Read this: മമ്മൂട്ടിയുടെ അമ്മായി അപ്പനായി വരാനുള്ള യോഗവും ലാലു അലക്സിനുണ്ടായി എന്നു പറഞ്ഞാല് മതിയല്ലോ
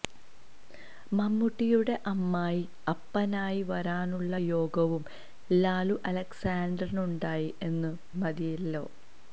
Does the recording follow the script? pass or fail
fail